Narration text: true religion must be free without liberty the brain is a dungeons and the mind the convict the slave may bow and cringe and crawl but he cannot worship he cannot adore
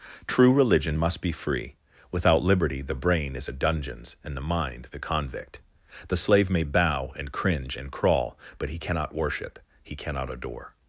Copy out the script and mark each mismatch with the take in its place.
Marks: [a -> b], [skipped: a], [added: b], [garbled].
true religion must be free without liberty the brain is a dungeons and the mind the convict the slave may bow and cringe and crawl but he cannot worship he cannot adore